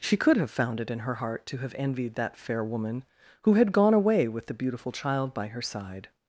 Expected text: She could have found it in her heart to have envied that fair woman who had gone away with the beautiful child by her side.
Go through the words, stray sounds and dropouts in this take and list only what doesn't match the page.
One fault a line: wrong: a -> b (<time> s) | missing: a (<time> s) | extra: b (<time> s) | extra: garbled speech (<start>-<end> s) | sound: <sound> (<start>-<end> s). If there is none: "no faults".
no faults